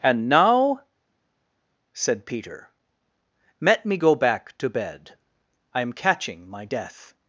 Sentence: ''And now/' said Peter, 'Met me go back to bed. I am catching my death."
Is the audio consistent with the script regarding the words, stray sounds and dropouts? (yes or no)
no